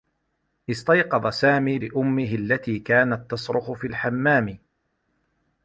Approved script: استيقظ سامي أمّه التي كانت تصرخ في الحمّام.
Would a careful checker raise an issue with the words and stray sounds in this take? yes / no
no